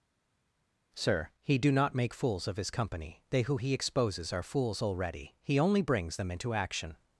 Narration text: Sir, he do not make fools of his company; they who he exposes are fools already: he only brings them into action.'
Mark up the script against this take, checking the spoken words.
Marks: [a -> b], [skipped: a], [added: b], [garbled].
Sir, he do not make fools of his company; they who he exposes are fools already: he only brings them into action.'